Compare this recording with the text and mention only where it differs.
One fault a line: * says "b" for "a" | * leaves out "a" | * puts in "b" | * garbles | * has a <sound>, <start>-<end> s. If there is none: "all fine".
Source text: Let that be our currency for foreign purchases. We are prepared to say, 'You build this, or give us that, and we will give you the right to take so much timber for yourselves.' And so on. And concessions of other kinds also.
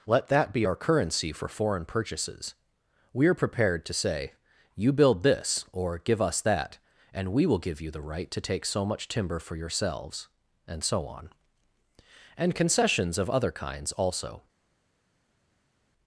all fine